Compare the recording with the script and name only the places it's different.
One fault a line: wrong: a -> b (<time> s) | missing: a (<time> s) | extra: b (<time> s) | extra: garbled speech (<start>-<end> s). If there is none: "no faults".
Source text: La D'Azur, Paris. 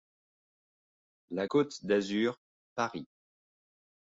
extra: Côte (1.4 s)